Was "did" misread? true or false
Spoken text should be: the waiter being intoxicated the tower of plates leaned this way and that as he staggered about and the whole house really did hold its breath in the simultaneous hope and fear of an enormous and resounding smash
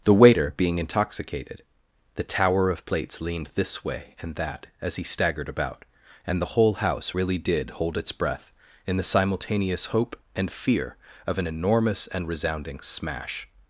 false